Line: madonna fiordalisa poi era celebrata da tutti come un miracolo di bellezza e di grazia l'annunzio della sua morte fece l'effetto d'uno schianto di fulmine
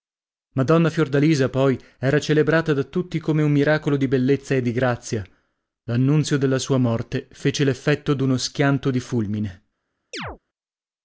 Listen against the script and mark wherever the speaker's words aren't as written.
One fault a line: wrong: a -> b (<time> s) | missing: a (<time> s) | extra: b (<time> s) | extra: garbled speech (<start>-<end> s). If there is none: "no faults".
no faults